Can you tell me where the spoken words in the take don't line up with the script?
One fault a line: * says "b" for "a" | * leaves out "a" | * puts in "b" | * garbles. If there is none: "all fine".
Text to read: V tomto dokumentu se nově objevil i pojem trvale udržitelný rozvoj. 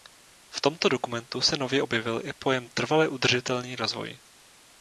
all fine